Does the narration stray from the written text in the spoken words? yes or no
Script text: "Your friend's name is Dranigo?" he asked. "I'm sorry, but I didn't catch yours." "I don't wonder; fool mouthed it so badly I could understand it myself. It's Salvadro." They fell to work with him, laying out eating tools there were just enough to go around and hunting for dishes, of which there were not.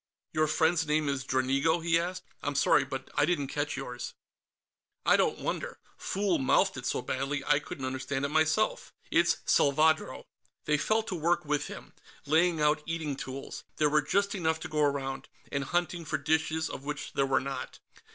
yes